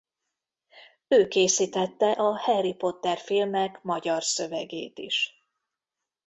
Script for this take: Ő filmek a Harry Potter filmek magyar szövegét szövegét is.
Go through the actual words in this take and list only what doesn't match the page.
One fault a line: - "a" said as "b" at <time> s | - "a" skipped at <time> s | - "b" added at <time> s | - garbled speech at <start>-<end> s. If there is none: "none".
- "filmek" said as "készítette" at 1.3 s
- "szövegét" skipped at 5.0 s